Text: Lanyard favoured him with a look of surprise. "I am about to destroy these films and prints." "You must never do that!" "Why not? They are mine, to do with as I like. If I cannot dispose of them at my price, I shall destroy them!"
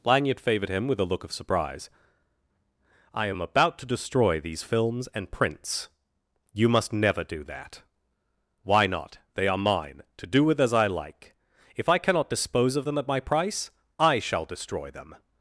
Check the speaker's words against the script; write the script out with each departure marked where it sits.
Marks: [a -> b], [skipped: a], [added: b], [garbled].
Lanyard favoured him with a look of surprise. "I am about to destroy these films and prints." "You must never do that!" "Why not? They are mine, to do with as I like. If I cannot dispose of them at my price, I shall destroy them!"